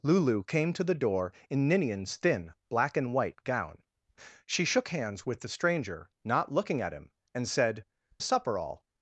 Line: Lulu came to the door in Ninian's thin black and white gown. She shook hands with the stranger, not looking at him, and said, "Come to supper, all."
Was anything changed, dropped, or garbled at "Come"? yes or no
yes